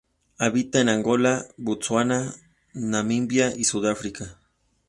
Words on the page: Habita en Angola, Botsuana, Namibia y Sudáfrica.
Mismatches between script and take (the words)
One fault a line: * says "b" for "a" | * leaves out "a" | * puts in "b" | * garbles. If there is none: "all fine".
all fine